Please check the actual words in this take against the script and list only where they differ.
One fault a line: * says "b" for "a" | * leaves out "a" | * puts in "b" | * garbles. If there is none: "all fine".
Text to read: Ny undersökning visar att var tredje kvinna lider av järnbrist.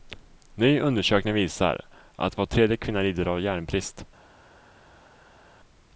all fine